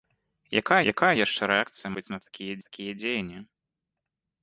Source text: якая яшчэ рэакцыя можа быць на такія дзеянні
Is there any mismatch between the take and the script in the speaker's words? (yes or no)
yes